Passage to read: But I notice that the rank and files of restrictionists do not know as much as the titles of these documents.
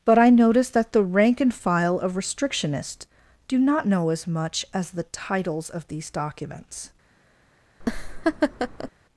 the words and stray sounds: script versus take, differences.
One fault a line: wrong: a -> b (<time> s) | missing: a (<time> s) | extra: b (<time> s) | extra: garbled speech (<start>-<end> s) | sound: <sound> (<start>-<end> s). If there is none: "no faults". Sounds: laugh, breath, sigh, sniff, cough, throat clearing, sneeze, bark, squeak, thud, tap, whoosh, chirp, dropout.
wrong: files -> file (1.5 s)
sound: laugh (7.8-8.9 s)